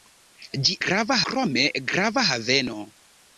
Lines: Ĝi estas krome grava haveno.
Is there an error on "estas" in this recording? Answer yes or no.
yes